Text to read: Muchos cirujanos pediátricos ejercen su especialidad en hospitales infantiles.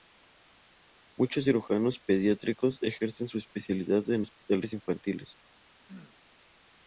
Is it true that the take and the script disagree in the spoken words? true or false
false